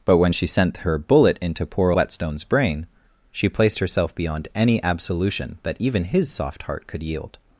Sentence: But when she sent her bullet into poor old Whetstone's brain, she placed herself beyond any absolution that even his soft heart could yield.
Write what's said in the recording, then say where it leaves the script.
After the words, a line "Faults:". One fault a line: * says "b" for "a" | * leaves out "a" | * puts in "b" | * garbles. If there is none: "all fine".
But when she sent her bullet into poor Whetstone's brain, she placed herself beyond any absolution that even his soft heart could yield.
Faults:
* leaves out "old"